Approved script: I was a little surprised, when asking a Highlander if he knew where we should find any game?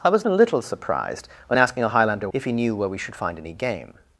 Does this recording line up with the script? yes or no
yes